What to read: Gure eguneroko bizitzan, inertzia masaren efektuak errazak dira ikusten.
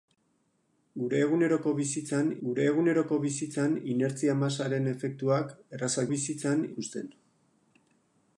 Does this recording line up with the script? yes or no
no